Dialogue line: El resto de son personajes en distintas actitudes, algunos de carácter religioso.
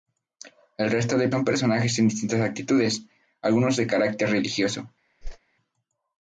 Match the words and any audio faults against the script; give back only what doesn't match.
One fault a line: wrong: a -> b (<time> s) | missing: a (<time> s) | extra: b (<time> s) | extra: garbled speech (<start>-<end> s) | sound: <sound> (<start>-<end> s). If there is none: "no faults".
sound: whoosh (5.2-5.4 s)